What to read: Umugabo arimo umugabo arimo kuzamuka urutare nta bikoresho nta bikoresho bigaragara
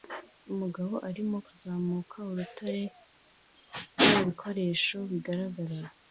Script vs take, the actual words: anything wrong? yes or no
yes